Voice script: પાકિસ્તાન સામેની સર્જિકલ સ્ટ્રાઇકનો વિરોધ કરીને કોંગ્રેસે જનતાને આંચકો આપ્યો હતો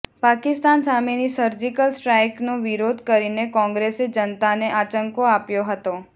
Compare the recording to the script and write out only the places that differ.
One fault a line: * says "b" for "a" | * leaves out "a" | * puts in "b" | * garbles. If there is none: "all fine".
all fine